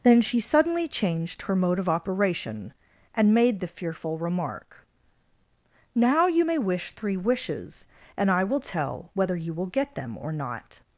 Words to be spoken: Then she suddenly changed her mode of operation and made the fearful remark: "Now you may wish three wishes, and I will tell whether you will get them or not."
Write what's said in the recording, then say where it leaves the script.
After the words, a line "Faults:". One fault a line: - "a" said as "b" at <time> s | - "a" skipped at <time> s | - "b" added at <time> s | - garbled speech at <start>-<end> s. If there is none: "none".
Then she suddenly changed her mode of operation and made the fearful remark: "Now you may wish three wishes, and I will tell whether you will get them or not."
Faults:
none